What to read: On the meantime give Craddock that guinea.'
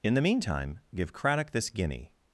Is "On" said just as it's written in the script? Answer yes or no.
no